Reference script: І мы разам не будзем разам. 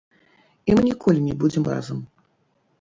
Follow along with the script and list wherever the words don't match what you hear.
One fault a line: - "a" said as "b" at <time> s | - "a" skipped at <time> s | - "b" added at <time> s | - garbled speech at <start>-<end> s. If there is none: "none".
- "разам" said as "ніколі" at 0.9 s